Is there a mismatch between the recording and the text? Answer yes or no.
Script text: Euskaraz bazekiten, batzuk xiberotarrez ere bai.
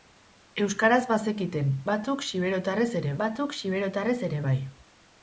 yes